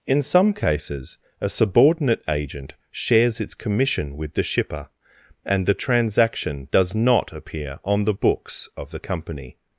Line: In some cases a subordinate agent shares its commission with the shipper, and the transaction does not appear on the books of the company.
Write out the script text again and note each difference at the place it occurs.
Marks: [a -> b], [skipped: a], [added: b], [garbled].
In some cases a subordinate agent shares its commission with the shipper, and the transaction does not appear on the books of the company.